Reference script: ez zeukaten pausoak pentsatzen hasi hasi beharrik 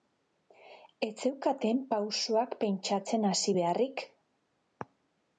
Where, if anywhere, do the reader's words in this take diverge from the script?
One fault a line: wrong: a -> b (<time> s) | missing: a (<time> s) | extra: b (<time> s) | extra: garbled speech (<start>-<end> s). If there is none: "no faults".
missing: hasi (3.6 s)